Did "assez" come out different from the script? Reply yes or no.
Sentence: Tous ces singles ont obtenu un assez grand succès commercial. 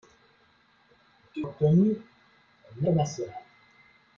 yes